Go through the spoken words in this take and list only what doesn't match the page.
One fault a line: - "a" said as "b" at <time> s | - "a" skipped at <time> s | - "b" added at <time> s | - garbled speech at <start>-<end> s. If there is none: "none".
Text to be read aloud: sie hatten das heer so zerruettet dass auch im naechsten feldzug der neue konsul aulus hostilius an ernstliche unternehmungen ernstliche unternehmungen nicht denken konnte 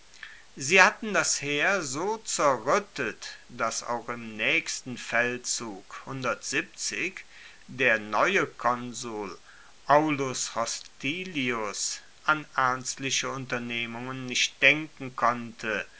- "ernstliche unternehmungen" skipped at 14.2 s